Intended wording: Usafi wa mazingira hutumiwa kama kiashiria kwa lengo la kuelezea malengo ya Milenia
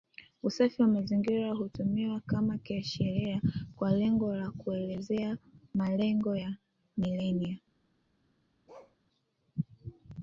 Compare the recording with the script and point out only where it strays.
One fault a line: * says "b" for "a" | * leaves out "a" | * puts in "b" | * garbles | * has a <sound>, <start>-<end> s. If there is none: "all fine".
* has a bark, 8.7-9.0 s